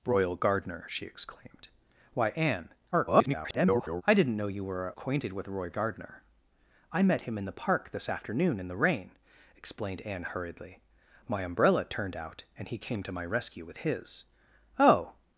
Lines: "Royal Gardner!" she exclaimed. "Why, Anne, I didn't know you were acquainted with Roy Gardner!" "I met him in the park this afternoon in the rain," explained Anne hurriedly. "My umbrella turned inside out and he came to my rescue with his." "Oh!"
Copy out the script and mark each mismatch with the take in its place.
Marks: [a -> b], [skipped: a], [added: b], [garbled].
"Royal Gardner!" she exclaimed. "Why, Anne, [garbled] I didn't know you were acquainted with Roy Gardner!" "I met him in the park this afternoon in the rain," explained Anne hurriedly. "My umbrella turned [skipped: inside] out and he came to my rescue with his." "Oh!"